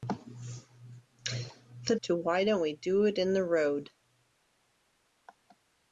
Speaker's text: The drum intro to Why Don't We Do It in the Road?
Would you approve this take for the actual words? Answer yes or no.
no